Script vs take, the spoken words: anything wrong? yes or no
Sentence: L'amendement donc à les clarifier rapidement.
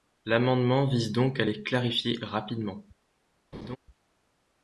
yes